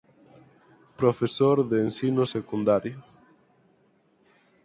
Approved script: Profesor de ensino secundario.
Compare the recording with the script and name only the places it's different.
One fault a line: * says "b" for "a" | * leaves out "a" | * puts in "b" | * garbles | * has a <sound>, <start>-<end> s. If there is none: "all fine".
all fine